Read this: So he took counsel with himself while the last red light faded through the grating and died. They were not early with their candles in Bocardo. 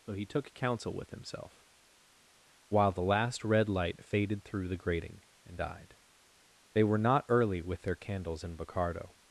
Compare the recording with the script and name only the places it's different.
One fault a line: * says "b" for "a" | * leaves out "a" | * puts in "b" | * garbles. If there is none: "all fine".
all fine